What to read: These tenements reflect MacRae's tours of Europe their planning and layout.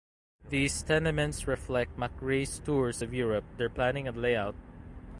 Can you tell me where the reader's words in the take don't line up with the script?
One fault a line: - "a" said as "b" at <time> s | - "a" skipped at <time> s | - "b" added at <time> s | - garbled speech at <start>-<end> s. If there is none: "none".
none